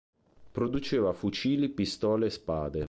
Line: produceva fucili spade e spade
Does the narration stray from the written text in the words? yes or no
yes